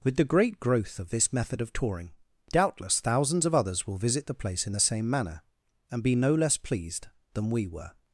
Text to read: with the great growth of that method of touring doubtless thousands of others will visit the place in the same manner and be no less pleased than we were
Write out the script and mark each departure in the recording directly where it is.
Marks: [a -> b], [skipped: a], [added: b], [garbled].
with the great growth of [that -> this] method of touring doubtless thousands of others will visit the place in the same manner and be no less pleased than we were